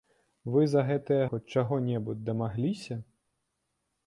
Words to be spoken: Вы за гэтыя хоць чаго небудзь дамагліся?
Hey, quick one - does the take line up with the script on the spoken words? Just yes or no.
yes